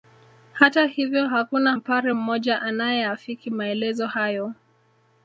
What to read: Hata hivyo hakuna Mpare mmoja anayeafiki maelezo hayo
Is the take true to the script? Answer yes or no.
yes